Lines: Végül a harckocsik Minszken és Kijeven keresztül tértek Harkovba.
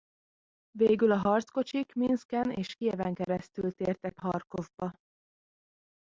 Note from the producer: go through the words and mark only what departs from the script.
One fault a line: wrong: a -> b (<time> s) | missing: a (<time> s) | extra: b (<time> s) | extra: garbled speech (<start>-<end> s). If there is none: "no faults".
no faults